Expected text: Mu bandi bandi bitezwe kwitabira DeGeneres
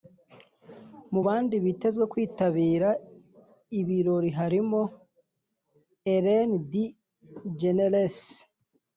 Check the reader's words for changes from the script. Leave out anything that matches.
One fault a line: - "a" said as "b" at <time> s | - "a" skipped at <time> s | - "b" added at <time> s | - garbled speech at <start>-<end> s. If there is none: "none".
- "bandi" skipped at 1.6 s
- "ibirori harimo Ellen" added at 3.8 s